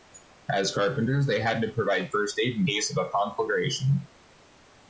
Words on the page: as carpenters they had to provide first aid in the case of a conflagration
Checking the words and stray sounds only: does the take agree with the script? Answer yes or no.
no